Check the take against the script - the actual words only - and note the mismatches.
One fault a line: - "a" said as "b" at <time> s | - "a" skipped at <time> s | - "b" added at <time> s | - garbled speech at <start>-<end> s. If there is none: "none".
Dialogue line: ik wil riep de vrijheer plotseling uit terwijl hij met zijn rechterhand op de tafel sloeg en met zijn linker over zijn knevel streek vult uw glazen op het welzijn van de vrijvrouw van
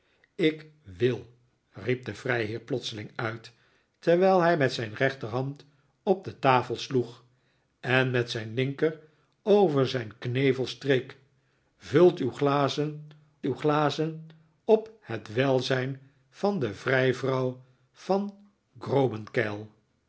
- "uw glazen" added at 13.4 s